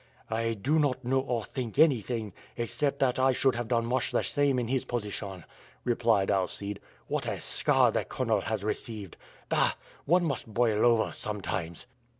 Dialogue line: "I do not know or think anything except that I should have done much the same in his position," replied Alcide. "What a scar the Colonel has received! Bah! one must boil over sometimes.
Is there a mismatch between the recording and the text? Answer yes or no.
no